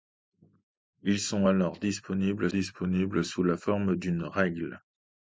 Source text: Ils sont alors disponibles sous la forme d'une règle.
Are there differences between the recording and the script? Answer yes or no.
yes